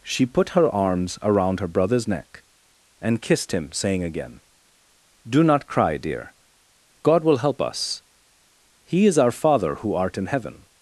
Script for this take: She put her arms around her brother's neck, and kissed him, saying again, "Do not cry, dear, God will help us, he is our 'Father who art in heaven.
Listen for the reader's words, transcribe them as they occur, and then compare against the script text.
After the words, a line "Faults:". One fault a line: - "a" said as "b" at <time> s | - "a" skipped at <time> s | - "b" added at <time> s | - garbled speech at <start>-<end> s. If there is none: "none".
She put her arms around her brother's neck, and kissed him, saying again, "Do not cry, dear, God will help us, he is our 'Father who art in heaven.
Faults:
none